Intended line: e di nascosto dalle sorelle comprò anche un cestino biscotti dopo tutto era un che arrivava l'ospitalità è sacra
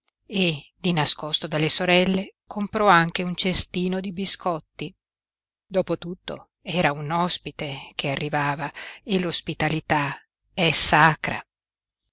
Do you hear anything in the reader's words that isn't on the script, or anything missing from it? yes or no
yes